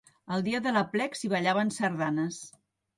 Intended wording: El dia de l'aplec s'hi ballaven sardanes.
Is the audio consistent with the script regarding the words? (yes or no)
yes